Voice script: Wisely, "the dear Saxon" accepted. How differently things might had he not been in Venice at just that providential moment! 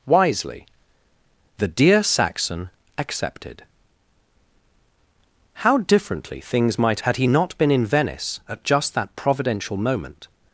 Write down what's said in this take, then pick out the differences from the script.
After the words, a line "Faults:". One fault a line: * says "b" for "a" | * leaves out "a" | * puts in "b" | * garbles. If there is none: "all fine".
Wisely, "the dear Saxon" accepted. How differently things might had he not been in Venice at just that providential moment!
Faults:
all fine